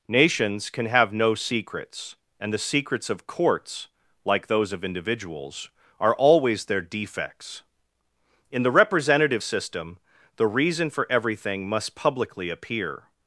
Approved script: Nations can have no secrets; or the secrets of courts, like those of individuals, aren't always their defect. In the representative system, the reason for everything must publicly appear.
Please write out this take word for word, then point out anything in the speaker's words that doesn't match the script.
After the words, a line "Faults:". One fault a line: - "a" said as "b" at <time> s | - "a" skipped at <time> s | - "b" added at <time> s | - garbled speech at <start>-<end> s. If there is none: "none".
Nations can have no secrets; and the secrets of courts, like those of individuals, are always their defects. In the representative system, the reason for everything must publicly appear.
Faults:
- "or" said as "and" at 2.4 s
- "aren't" said as "are" at 6.0 s
- "defect" said as "defects" at 6.8 s